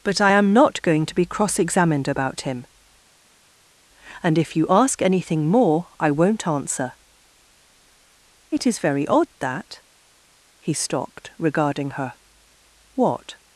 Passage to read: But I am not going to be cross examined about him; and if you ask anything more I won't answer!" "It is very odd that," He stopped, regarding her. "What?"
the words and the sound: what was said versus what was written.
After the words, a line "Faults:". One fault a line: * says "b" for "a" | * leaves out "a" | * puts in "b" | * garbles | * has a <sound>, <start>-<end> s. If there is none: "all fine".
But I am not going to be cross examined about him; and if you ask anything more I won't answer!" "It is very odd that," He stopped, regarding her. "What?"
Faults:
all fine